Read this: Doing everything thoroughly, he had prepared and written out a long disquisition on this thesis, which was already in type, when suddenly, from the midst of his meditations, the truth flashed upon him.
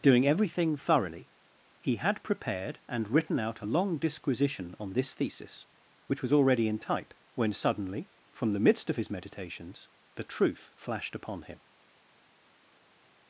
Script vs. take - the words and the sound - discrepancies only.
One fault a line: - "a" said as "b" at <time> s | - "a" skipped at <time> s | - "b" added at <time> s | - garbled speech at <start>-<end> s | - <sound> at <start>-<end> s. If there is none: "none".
none